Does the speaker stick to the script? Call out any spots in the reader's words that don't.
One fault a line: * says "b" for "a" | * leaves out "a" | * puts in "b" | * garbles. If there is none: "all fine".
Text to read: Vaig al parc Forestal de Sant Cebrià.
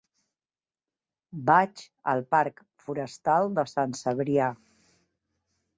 all fine